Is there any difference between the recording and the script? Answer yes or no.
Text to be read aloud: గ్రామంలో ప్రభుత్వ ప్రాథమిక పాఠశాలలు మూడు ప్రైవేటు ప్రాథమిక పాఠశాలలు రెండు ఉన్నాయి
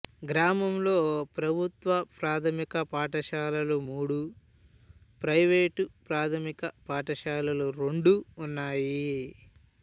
no